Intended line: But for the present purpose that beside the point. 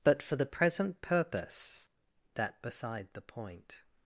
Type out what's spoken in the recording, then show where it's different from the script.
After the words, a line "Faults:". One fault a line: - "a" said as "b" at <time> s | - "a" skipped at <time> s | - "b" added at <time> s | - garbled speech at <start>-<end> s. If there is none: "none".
But for the present purpose that beside the point.
Faults:
none